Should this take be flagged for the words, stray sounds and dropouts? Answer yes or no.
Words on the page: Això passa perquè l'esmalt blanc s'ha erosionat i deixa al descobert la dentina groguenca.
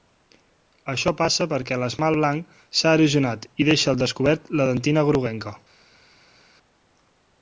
no